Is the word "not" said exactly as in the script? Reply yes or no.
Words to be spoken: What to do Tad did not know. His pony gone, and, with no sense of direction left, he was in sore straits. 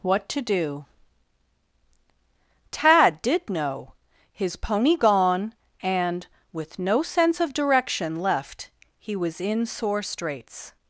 no